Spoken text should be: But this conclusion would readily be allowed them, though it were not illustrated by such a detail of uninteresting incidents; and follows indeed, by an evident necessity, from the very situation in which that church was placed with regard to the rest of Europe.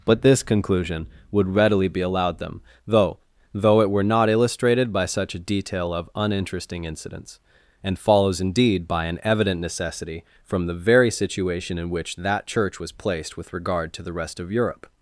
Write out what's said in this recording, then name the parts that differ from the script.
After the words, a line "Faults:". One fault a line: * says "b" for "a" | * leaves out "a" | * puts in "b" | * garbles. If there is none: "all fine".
But this conclusion would readily be allowed them, though though it were not illustrated by such a detail of uninteresting incidents; and follows indeed, by an evident necessity, from the very situation in which that church was placed with regard to the rest of Europe.
Faults:
* puts in "though"